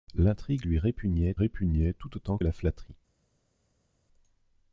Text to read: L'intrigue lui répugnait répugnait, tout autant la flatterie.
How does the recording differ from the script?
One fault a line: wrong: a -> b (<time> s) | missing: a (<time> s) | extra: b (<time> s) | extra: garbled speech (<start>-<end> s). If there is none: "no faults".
no faults